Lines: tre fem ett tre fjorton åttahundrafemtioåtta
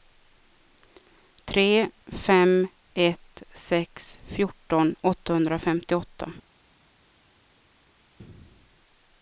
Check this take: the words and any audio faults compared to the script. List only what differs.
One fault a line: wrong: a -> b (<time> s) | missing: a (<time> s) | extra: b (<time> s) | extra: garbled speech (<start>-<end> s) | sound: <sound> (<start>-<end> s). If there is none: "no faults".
wrong: tre -> sex (3.5 s)